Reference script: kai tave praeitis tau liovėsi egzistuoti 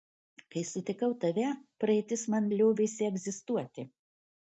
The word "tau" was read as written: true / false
false